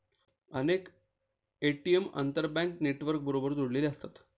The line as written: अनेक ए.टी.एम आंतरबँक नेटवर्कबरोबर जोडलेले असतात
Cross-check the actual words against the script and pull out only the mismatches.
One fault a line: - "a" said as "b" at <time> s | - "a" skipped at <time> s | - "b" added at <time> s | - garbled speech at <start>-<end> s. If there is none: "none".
none